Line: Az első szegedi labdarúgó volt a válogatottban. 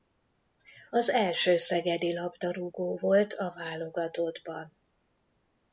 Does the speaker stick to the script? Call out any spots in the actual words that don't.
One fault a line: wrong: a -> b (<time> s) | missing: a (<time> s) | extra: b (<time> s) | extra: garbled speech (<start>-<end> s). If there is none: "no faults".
no faults